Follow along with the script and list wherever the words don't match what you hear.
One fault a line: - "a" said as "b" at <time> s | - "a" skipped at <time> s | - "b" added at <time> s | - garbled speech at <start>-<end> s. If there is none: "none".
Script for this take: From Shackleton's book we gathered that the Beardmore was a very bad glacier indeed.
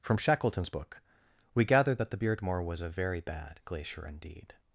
none